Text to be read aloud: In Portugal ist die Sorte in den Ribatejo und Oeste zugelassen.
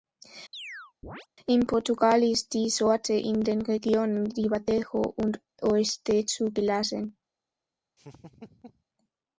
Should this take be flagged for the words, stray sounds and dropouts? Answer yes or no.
yes